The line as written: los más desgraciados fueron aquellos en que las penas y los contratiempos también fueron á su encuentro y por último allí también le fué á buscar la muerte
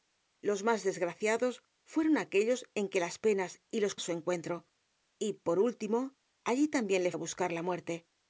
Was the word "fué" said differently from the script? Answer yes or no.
yes